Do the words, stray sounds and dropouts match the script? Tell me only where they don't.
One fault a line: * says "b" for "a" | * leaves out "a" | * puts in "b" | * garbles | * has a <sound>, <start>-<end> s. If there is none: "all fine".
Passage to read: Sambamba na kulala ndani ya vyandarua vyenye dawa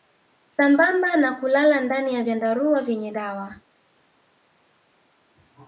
all fine